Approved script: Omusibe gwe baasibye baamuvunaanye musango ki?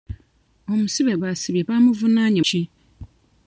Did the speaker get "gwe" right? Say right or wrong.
wrong